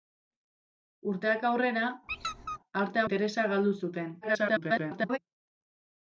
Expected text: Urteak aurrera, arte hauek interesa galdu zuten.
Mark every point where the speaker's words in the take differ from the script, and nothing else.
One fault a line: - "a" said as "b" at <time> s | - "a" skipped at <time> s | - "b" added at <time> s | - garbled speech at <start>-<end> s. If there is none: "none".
- "hauek" skipped at 3.0 s
- garbled speech at 4.2-5.2 s